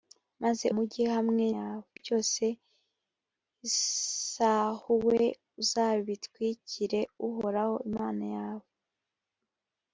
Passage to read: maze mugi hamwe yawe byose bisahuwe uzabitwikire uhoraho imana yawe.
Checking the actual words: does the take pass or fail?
pass